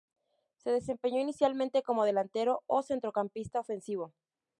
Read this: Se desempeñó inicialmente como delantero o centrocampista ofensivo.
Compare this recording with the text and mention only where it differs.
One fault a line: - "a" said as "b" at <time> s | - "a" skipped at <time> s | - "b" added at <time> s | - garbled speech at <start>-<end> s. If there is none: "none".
none